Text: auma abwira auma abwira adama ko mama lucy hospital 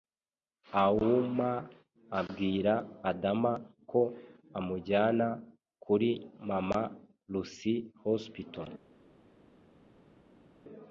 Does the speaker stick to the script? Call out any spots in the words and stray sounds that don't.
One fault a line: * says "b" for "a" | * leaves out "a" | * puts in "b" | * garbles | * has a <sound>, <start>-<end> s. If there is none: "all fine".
* says "adama ko amujyana kuri" for "auma abwira adama ko"